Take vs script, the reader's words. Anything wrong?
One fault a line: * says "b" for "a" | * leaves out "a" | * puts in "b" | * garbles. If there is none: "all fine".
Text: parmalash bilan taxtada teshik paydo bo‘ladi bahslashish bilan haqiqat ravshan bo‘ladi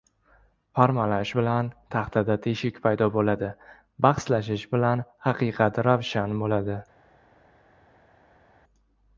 all fine